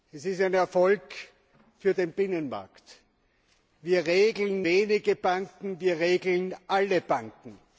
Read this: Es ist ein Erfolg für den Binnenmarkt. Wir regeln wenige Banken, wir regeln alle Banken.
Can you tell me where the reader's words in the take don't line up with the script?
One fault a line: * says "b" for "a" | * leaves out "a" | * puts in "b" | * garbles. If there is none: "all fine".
all fine